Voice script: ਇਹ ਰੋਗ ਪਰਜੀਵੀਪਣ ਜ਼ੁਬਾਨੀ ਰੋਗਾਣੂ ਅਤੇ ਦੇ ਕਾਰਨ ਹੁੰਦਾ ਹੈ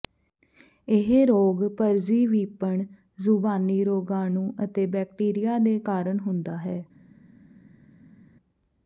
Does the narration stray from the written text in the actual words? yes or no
yes